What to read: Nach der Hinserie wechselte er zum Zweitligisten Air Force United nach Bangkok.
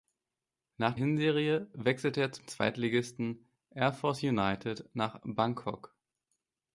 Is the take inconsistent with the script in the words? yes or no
yes